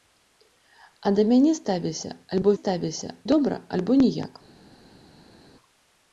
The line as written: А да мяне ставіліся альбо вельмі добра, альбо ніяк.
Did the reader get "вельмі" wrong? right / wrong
wrong